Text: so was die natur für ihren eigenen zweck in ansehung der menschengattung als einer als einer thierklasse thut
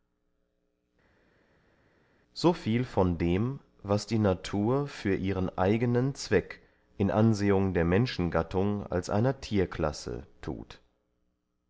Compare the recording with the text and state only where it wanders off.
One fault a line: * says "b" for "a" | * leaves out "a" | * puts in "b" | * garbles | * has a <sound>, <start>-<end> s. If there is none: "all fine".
* puts in "viel von dem"
* leaves out "als einer"